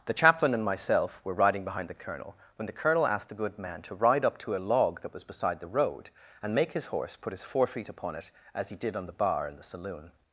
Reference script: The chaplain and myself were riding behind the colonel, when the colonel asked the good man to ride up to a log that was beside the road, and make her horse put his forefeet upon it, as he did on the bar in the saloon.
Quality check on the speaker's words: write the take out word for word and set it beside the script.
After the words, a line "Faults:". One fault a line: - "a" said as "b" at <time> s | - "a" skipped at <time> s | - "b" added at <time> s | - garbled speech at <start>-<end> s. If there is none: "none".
The chaplain and myself were riding behind the colonel, when the colonel asked the good man to ride up to a log that was beside the road, and make his horse put his forefeet upon it, as he did on the bar in the saloon.
Faults:
- "her" said as "his" at 6.7 s